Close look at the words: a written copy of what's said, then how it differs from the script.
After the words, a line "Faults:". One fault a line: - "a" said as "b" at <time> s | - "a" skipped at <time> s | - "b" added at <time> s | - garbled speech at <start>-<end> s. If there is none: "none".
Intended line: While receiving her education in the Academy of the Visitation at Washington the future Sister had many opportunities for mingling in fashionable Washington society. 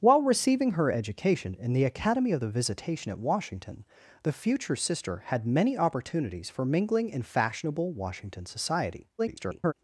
While receiving her education in the Academy of the Visitation at Washington the future Sister had many opportunities for mingling in fashionable Washington society. [garbled]
Faults:
- garbled speech at 9.2-9.7 s